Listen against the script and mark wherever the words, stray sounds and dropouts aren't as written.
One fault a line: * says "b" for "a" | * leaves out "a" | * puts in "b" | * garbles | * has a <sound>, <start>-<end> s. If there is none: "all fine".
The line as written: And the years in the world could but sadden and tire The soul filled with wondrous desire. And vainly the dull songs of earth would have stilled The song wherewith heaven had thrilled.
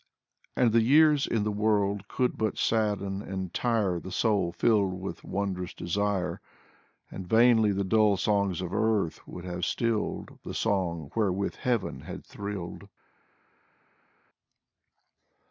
all fine